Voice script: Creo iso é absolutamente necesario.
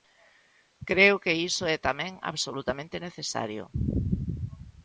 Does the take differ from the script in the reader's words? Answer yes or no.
yes